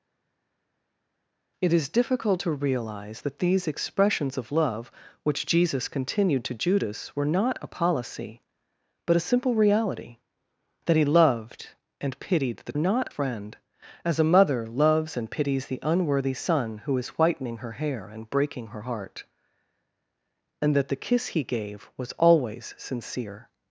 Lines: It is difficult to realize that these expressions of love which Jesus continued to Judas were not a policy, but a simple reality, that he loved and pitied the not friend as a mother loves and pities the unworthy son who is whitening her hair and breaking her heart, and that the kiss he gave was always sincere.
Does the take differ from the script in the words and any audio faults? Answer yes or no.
no